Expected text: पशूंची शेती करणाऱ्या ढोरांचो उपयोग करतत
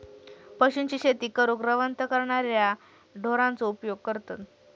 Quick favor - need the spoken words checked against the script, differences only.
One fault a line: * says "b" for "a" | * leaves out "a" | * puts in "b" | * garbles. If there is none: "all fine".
* puts in "करूक रवंथ"